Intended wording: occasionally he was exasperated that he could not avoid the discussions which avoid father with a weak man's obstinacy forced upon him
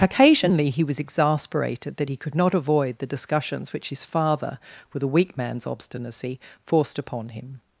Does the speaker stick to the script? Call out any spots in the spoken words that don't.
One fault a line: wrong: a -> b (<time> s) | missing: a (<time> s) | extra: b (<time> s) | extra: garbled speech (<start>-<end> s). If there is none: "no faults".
wrong: avoid -> his (3.9 s)